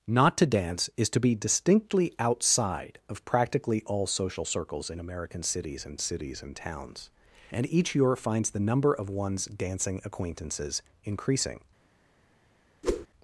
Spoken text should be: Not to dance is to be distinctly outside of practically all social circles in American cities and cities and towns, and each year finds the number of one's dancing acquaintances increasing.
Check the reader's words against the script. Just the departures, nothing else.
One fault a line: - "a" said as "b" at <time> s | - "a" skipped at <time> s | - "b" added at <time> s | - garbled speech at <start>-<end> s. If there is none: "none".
none